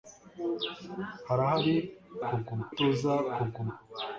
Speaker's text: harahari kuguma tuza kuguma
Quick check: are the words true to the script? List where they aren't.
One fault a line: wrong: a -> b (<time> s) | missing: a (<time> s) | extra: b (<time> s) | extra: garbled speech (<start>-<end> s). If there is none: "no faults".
no faults